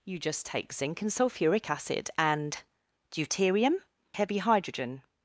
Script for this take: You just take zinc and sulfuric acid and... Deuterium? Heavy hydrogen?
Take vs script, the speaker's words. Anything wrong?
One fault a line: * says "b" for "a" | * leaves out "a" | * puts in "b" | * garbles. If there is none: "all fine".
all fine